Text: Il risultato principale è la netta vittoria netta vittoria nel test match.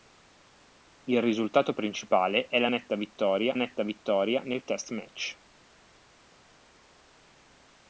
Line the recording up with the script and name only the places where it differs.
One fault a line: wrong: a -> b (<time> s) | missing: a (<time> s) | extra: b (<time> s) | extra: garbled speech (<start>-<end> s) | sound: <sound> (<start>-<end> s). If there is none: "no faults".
no faults